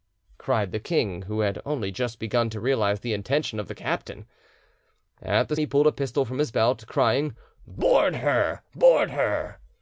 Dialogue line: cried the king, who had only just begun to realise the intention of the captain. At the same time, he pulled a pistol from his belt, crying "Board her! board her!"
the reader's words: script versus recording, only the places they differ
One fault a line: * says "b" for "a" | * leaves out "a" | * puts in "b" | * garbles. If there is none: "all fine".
* leaves out "same time"